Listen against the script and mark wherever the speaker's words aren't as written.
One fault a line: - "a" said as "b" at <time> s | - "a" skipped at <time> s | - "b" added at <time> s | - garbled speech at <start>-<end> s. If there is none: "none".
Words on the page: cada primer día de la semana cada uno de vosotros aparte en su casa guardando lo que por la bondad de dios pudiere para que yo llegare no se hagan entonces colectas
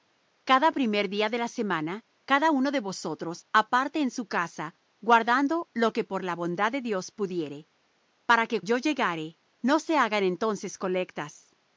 none